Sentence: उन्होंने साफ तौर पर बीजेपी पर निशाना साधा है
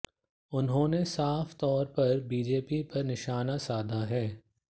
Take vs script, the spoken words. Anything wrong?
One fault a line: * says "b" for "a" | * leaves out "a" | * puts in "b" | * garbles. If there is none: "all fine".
all fine